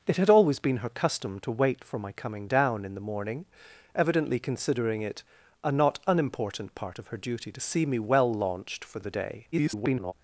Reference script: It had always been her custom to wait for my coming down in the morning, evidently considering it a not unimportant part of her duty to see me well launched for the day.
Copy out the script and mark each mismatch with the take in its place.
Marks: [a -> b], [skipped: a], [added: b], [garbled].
It had always been her custom to wait for my coming down in the morning, evidently considering it a not unimportant part of her duty to see me well launched for the day. [garbled]